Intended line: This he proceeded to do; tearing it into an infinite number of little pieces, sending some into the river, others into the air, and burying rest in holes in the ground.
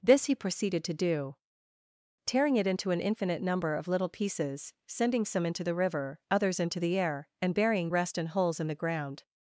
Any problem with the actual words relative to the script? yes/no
no